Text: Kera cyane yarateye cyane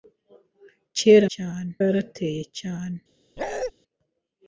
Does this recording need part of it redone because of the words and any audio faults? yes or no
yes